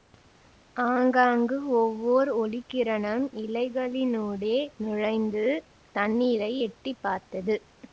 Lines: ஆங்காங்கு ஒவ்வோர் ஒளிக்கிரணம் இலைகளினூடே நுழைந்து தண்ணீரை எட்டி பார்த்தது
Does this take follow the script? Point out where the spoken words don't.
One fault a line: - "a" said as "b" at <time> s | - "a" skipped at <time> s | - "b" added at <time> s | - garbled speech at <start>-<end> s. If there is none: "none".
none